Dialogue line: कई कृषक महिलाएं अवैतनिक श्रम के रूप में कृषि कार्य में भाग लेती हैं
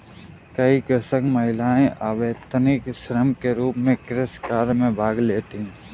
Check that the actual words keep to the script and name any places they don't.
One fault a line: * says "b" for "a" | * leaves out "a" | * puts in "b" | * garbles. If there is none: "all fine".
all fine